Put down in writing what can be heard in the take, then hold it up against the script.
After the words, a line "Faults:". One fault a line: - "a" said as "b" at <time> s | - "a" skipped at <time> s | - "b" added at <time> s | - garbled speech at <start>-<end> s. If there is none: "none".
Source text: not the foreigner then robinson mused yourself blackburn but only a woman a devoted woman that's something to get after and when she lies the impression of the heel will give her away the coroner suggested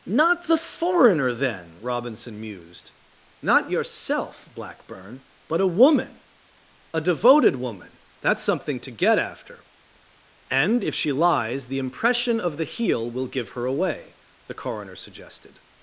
not the foreigner then robinson mused not yourself blackburn but a woman a devoted woman that's something to get after and if she lies the impression of the heel will give her away the coroner suggested
Faults:
- "not" added at 3.4 s
- "only" skipped at 5.6 s
- "when" said as "if" at 10.8 s